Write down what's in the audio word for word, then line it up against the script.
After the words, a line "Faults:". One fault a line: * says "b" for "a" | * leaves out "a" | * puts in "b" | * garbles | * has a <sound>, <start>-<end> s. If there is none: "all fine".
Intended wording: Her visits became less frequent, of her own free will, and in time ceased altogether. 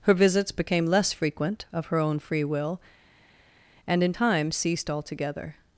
Her visits became less frequent, of her own free will, and in time ceased altogether.
Faults:
all fine